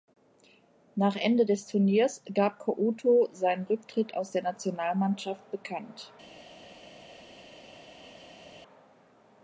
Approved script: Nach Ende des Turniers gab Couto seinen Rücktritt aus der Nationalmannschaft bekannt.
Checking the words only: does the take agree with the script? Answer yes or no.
yes